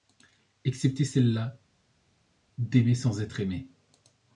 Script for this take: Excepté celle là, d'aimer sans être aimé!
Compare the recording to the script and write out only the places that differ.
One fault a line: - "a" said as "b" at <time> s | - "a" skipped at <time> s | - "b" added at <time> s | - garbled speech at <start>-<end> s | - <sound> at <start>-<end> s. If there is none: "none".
none